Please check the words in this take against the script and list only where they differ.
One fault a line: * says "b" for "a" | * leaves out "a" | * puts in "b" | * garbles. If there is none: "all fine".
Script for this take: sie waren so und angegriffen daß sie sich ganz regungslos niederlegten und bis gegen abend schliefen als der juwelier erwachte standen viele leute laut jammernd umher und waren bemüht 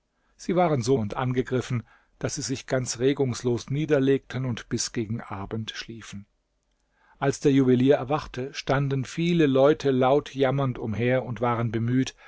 all fine